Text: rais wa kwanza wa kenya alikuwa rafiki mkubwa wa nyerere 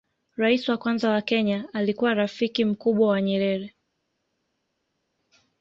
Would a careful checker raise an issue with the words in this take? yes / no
no